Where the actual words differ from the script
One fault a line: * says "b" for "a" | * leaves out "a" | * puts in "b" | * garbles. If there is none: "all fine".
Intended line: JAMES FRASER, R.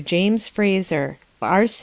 all fine